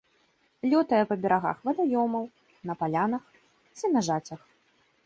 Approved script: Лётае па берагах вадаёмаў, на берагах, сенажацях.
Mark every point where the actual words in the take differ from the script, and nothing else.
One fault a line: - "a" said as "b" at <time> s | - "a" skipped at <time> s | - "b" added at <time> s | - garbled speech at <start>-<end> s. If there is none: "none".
- "берагах" said as "палянах" at 2.8 s